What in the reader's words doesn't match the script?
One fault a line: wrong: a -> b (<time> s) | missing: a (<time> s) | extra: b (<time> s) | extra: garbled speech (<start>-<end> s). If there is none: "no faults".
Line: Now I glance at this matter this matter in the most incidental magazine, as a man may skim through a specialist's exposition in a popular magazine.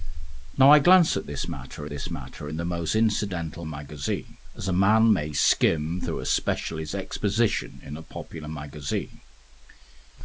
no faults